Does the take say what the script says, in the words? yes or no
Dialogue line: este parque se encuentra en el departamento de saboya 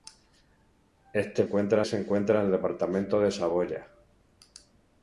no